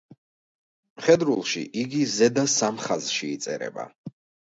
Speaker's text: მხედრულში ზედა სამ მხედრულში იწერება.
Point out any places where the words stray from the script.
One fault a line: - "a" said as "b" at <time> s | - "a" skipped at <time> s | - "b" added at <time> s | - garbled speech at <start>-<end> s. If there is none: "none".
- "იგი" added at 1.9 s
- "მხედრულში" said as "ხაზში" at 2.9 s